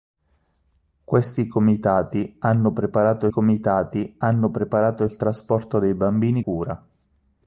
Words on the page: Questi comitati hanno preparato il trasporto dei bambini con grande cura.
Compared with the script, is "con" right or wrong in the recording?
wrong